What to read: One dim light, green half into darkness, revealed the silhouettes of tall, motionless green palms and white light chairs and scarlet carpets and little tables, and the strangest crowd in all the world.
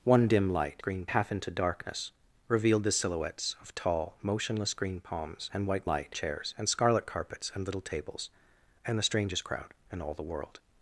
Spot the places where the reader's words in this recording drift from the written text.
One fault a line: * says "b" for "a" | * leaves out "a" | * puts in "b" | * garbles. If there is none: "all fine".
all fine